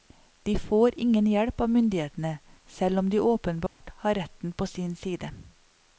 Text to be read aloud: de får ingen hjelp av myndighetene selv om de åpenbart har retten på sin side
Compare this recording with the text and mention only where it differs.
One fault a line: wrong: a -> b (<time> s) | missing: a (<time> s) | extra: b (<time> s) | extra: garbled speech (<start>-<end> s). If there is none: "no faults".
no faults